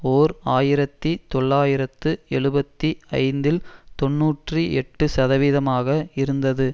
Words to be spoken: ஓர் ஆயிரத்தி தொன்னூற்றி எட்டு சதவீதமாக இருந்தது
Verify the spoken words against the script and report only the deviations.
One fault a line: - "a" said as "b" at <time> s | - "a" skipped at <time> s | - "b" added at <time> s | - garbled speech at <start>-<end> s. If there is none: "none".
- "தொள்ளாயிரத்து எழுபத்தி ஐந்தில்" added at 1.3 s